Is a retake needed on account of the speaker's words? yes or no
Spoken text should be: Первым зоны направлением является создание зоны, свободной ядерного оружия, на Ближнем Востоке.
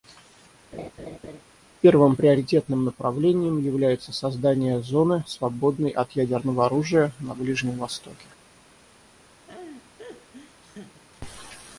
yes